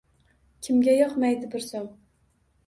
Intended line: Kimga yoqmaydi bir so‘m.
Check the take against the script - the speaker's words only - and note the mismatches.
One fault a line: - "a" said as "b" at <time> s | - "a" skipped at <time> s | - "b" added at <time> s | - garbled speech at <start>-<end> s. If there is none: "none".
none